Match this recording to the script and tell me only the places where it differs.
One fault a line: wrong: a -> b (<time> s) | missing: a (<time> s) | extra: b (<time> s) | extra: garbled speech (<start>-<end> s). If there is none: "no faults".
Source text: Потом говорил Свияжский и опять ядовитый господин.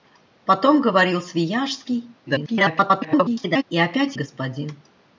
extra: garbled speech (2.3-3.6 s)
missing: ядовитый (4.2 s)